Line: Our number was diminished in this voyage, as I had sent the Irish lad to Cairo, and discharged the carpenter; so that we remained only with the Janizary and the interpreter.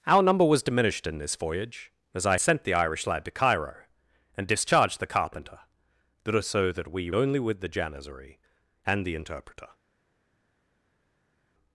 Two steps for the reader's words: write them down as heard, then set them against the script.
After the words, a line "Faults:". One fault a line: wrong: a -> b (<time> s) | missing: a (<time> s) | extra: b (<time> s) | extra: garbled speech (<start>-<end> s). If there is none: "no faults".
Our number was diminished in this voyage, as I sent the Irish lad to Cairo, and discharged the carpenter; so that we only with the Janizary and the interpreter.
Faults:
missing: had (2.4 s)
missing: remained (7.1 s)